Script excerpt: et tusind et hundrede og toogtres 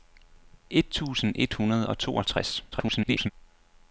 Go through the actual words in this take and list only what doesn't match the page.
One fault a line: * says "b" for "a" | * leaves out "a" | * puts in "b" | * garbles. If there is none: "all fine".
* garbles